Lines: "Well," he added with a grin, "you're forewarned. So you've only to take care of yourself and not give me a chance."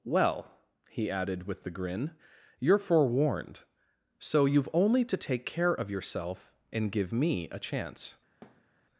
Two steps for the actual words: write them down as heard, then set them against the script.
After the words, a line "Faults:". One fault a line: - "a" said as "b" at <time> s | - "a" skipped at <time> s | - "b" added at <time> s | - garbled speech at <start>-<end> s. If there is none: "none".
"Well," he added with the grin, "you're forewarned. So you've only to take care of yourself and give me a chance."
Faults:
- "a" said as "the" at 1.6 s
- "not" skipped at 6.9 s